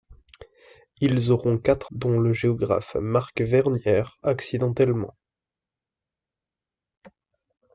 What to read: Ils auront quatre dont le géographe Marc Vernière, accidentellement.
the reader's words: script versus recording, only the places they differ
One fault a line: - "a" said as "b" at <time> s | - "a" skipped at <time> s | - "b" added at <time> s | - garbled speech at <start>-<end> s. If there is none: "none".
none